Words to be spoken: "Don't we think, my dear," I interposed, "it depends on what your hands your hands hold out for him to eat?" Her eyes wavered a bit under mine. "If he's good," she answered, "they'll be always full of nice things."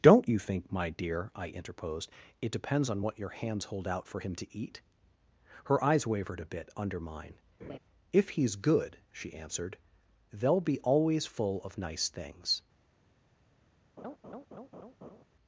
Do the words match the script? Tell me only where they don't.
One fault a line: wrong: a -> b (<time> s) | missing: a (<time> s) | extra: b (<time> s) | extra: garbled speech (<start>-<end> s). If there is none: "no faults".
wrong: we -> you (0.3 s)
missing: your hands (3.7 s)